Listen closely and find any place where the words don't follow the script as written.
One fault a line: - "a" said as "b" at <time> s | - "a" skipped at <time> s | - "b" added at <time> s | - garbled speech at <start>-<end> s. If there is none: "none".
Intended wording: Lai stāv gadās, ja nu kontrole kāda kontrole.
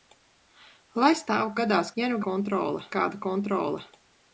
none